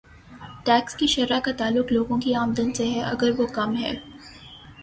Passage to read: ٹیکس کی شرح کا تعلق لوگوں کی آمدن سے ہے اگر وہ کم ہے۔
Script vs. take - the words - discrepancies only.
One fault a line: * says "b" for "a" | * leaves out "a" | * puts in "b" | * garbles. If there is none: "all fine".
all fine